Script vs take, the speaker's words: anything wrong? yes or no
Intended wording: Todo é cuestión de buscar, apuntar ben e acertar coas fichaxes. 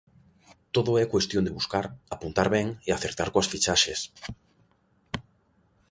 no